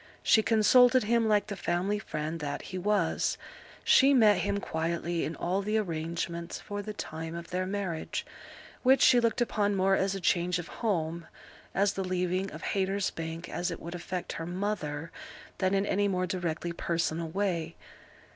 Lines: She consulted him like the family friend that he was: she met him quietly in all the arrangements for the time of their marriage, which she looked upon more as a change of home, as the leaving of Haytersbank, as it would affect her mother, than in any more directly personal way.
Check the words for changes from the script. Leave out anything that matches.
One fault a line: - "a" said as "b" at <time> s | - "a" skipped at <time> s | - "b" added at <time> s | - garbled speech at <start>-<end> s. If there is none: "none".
none